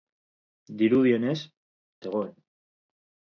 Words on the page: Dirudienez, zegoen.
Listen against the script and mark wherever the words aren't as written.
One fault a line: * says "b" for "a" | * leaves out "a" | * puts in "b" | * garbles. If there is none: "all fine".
all fine